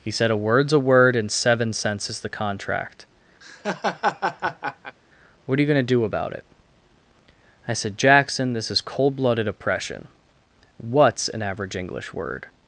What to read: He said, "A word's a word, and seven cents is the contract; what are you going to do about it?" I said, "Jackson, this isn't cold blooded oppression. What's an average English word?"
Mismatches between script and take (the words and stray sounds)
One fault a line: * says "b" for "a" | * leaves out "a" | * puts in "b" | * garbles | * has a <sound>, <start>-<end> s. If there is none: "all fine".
* has a laugh, 3.4-5.0 s
* says "is" for "isn't"